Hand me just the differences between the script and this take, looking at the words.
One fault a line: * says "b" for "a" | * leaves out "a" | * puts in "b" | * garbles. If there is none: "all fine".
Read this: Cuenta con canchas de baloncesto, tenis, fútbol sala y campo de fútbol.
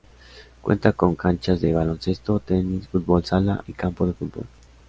all fine